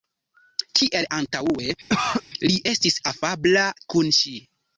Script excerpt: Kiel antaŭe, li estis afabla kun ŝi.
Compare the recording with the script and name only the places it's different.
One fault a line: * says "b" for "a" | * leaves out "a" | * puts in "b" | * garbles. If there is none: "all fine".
all fine